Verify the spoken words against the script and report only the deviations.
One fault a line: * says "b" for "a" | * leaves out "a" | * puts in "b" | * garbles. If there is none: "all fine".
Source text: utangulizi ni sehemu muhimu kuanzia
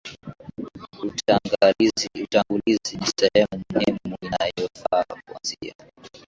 * puts in "inayofaa"